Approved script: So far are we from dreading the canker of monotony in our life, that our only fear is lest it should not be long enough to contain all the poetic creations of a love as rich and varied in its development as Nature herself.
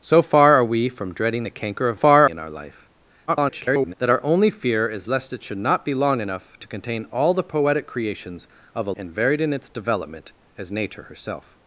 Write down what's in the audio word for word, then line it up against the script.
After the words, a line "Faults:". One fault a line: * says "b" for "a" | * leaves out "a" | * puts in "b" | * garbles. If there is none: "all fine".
So far are we from dreading the canker of far in our life, [garbled] that our only fear is lest it should not be long enough to contain all the poetic creations of a and varied in its development as Nature herself.
Faults:
* says "far" for "monotony"
* garbles
* leaves out "love as rich"